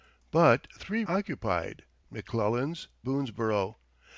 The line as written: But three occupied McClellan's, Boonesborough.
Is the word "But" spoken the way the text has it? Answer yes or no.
yes